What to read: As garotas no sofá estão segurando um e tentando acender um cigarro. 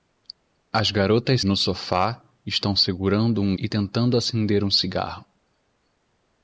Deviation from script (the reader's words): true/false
false